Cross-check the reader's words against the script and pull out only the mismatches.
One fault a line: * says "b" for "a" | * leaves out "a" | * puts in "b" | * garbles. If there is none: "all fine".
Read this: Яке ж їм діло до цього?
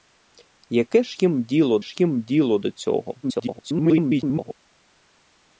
* puts in "ж їм діло"
* garbles